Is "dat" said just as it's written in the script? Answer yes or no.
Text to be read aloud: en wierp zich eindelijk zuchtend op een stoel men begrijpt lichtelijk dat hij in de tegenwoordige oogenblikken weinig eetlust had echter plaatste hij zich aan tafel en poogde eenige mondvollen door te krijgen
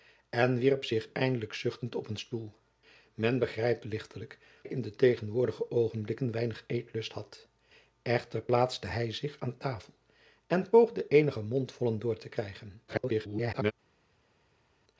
no